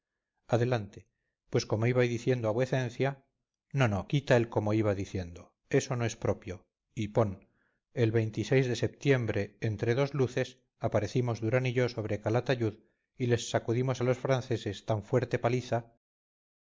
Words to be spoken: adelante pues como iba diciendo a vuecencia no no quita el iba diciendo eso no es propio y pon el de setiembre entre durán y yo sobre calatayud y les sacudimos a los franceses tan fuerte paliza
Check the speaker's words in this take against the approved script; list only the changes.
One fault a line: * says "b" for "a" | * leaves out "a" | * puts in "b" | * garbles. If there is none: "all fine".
* puts in "como"
* puts in "dos luces aparecimos"